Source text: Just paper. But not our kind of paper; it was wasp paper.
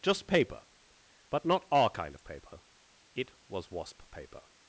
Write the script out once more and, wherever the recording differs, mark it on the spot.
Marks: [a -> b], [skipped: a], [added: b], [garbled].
Just paper. But not our kind of paper; it was wasp paper.